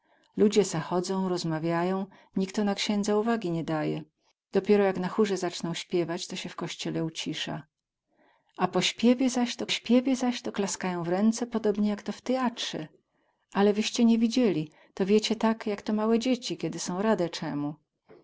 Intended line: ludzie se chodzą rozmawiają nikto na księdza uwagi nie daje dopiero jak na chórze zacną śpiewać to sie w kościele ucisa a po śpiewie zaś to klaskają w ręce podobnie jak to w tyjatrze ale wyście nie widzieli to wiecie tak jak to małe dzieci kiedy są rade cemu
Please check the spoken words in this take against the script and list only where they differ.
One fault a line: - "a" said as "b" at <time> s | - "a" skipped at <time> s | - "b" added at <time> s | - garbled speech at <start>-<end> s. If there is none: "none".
- "śpiewie zaś to" added at 9.7 s